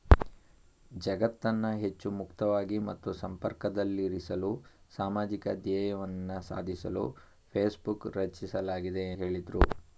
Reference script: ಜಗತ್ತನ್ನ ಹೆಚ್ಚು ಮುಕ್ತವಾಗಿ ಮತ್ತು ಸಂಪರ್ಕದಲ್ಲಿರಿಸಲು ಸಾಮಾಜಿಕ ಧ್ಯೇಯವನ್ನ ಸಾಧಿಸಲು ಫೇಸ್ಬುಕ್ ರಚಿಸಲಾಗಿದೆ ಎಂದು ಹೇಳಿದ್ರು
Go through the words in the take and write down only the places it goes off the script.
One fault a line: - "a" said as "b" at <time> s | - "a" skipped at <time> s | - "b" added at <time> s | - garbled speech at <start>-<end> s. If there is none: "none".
- "ಎಂದು" skipped at 9.1 s